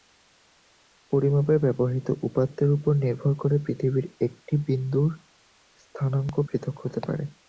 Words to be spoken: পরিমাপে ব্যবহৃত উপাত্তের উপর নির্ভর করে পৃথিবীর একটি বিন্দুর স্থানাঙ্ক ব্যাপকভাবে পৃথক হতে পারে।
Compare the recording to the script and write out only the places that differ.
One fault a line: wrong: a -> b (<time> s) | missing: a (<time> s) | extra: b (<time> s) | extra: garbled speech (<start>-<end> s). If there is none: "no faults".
missing: ব্যাপকভাবে (6.4 s)